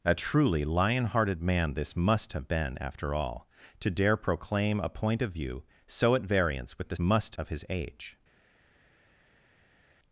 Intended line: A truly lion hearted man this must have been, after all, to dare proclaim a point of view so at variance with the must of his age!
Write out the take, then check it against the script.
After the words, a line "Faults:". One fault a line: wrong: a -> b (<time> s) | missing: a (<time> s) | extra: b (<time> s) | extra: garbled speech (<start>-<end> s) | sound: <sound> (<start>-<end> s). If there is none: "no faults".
A truly lion hearted man this must have been, after all, to dare proclaim a point of view so at variance with the must of his age!
Faults:
no faults